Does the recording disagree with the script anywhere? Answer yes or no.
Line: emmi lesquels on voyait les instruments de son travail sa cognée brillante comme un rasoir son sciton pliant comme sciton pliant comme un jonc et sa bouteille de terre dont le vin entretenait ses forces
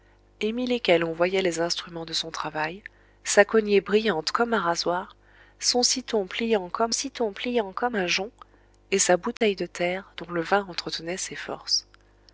no